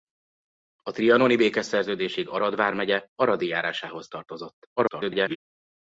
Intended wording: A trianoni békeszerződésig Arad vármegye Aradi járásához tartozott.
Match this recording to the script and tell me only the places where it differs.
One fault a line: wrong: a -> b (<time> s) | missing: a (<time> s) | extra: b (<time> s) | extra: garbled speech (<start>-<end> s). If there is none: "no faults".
extra: garbled speech (4.8-5.4 s)